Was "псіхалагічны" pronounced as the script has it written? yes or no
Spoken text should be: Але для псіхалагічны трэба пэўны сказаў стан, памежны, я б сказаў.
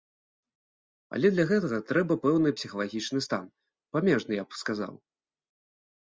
no